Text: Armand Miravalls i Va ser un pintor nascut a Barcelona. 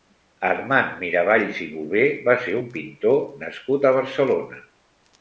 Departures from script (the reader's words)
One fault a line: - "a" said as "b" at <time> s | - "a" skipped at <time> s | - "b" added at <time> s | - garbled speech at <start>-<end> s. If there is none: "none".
- "Bové" added at 1.7 s